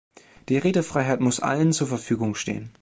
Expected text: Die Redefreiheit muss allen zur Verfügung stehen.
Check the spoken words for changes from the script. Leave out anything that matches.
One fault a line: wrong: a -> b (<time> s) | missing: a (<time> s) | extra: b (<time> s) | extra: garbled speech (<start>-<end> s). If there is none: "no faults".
no faults